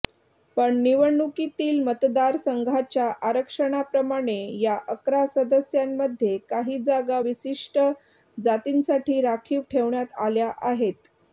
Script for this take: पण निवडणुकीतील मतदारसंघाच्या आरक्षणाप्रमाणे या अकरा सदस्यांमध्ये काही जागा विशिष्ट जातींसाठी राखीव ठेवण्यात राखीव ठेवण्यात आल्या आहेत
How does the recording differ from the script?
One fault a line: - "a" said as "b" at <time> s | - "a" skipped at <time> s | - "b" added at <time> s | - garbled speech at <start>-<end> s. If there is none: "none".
- "राखीव ठेवण्यात" skipped at 10.1 s